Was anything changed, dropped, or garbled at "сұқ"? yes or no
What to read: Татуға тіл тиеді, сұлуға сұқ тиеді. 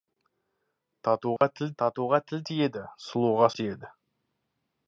yes